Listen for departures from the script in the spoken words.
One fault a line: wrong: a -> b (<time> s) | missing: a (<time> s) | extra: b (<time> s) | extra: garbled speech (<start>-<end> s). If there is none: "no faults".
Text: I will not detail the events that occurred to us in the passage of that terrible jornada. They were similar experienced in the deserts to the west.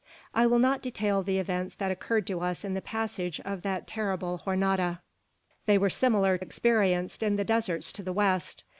no faults